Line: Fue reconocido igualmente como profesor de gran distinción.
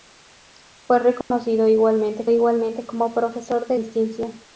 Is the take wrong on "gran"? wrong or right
wrong